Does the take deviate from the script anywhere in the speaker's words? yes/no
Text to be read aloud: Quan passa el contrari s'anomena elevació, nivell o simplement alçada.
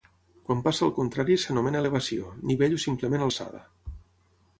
no